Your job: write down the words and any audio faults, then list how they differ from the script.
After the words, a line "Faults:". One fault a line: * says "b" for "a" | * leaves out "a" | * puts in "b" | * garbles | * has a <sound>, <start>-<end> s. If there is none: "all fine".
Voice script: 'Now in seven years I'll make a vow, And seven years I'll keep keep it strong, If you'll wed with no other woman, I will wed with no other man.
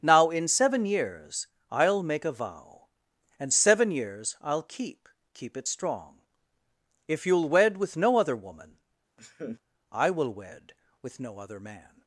'Now in seven years I'll make a vow, And seven years I'll keep keep it strong, If you'll wed with no other woman, I will wed with no other man.
Faults:
* has a laugh, 9.2-9.6 s